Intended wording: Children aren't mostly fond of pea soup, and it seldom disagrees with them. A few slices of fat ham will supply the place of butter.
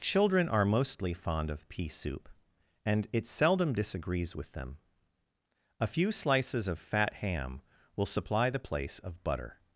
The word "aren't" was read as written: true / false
false